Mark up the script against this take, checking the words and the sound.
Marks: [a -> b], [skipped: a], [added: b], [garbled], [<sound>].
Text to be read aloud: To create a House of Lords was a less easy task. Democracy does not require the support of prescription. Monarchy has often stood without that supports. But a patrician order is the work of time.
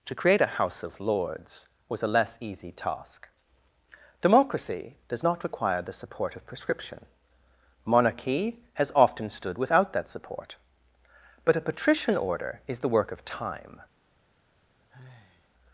To create a House of Lords was a less easy task. Democracy does not require the support of prescription. Monarchy has often stood without that [supports. -> support] But a patrician order is the work of time. [sigh]